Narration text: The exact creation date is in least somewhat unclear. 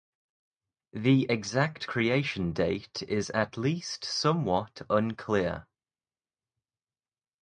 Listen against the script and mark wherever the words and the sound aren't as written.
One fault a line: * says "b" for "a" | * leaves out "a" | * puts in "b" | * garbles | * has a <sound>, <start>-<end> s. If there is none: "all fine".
* says "at" for "in"